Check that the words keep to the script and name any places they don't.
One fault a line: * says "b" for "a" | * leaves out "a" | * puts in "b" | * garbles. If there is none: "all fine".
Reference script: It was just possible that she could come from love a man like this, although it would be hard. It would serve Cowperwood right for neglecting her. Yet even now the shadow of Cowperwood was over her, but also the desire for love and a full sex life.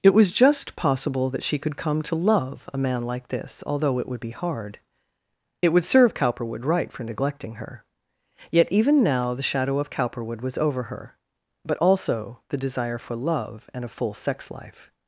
* says "to" for "from"